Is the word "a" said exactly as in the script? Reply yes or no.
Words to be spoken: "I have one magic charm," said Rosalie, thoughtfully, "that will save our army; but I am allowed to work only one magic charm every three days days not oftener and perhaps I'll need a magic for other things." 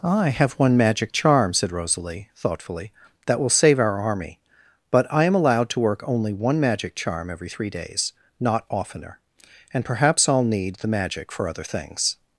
no